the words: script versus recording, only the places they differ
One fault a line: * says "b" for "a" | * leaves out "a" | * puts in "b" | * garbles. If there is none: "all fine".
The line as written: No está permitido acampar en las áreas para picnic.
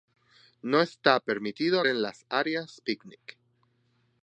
* leaves out "acampar"
* leaves out "para"